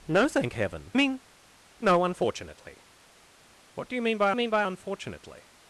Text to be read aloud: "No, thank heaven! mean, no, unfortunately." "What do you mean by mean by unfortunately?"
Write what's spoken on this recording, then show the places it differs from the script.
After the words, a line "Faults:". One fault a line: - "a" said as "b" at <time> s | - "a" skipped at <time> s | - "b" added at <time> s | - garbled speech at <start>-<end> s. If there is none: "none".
"No, thank heaven! mean, no, unfortunately." "What do you mean by mean by unfortunately?"
Faults:
none